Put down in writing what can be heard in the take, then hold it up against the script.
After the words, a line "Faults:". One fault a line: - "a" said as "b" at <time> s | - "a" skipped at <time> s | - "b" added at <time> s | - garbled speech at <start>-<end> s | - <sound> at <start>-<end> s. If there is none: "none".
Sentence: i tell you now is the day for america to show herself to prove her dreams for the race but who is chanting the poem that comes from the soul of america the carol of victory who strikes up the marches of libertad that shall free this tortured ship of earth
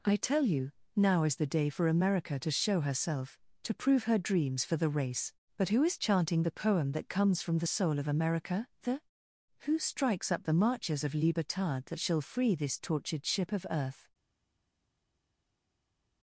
i tell you now is the day for america to show herself to prove her dreams for the race but who is chanting the poem that comes from the soul of america the who strikes up the marches of libertad that shall free this tortured ship of earth
Faults:
- "carol of victory" skipped at 9.0 s